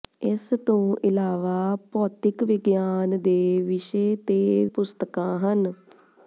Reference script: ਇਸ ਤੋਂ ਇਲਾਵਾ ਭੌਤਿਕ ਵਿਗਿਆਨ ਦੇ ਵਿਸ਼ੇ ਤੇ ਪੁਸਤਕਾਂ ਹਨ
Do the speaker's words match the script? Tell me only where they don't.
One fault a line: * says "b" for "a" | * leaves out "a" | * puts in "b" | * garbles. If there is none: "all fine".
all fine